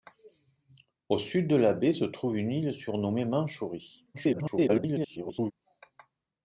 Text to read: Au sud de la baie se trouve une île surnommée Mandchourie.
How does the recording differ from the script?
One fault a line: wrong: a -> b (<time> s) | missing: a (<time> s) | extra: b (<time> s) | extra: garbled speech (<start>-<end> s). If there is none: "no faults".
extra: garbled speech (4.1-5.5 s)